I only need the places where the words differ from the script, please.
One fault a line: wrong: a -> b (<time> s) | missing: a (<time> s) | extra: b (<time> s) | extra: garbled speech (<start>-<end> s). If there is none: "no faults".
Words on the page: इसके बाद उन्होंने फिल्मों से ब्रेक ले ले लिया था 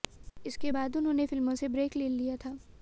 missing: ले (2.1 s)